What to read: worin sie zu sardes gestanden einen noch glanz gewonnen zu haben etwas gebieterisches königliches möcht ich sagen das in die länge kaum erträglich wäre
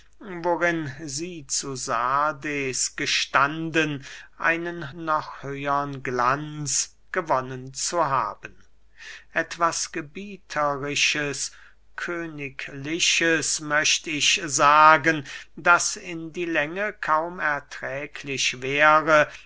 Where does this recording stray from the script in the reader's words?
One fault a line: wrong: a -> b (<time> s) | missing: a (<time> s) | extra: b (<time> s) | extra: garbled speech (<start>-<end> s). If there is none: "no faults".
extra: höhern (5.4 s)